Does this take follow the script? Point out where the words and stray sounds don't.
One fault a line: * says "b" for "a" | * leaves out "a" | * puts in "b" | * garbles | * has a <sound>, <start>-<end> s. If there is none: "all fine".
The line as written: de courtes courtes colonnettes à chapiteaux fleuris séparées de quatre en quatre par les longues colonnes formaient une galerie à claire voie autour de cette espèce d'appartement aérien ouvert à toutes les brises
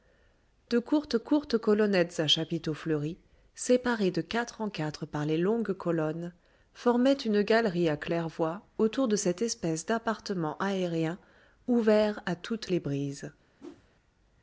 * has a whoosh, 13.6-13.9 s